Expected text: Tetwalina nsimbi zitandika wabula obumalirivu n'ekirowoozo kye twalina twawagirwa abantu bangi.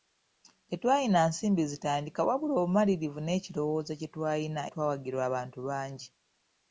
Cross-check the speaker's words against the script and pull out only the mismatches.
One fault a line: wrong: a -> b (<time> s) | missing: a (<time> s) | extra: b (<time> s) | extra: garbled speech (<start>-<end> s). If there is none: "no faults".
no faults